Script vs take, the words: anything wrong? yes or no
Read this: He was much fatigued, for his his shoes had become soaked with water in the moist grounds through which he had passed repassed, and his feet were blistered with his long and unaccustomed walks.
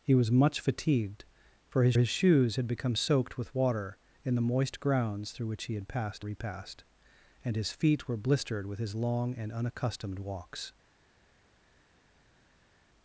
no